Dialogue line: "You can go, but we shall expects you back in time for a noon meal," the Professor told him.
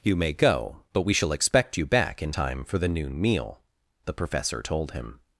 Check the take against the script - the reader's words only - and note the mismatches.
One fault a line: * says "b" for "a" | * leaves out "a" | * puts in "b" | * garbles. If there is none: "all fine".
* says "may" for "can"
* says "expect" for "expects"
* says "the" for "a"